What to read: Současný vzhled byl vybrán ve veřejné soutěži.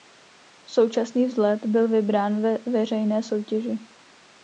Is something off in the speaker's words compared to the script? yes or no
no